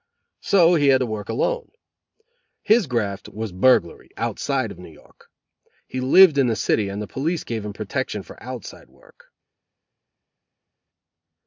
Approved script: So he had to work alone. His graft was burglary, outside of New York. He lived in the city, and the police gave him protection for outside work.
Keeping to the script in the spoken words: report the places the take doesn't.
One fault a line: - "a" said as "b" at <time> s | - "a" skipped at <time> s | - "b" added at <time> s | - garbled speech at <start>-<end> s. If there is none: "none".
none